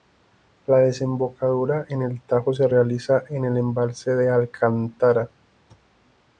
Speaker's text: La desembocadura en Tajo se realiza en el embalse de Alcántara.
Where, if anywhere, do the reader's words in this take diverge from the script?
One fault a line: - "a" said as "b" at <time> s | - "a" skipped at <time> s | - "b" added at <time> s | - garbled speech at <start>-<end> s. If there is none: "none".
- "el" added at 2.0 s